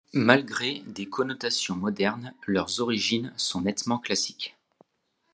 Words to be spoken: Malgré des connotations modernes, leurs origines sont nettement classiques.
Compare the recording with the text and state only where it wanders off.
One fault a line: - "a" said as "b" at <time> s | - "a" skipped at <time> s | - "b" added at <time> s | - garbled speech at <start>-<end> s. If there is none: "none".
none